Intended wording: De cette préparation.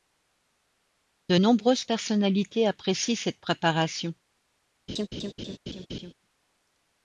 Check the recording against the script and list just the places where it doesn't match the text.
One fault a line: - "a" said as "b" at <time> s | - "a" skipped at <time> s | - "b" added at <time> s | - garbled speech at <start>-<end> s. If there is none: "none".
- "nombreuses personnalités apprécient" added at 1.3 s